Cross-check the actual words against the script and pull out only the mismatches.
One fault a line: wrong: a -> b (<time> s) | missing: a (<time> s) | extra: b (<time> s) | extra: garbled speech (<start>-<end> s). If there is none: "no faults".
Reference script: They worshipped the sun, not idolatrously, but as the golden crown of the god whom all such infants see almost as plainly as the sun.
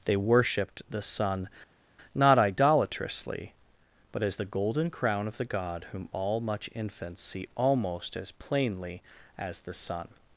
wrong: such -> much (6.4 s)